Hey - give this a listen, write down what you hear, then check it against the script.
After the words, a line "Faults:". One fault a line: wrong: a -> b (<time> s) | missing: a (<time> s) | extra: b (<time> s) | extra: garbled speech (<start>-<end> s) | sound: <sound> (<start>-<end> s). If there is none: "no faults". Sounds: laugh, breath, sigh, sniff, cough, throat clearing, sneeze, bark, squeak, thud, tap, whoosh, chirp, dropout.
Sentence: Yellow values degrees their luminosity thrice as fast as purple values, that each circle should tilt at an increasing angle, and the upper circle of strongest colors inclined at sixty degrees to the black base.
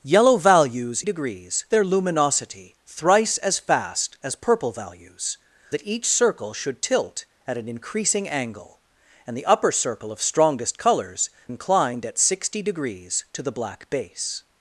Yellow values degrees their luminosity thrice as fast as purple values, that each circle should tilt at an increasing angle, and the upper circle of strongest colors inclined at sixty degrees to the black base.
Faults:
no faults